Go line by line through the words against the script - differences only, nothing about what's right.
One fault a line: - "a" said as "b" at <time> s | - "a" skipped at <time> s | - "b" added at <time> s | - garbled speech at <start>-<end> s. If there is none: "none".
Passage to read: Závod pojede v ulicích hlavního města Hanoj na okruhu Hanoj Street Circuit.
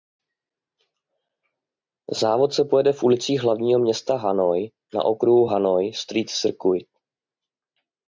- "se" added at 2.5 s